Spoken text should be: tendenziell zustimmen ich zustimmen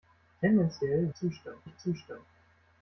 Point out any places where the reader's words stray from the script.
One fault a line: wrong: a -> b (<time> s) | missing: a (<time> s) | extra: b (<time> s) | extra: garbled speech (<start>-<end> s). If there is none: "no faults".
no faults